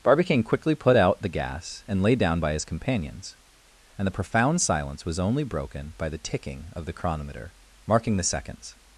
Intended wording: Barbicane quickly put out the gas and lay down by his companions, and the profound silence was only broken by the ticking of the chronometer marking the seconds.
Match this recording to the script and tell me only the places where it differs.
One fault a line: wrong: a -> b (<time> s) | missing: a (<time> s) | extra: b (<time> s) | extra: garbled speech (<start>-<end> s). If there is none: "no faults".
no faults